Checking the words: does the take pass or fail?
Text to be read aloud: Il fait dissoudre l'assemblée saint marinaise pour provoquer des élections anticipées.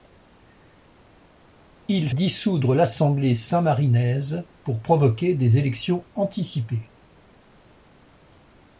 fail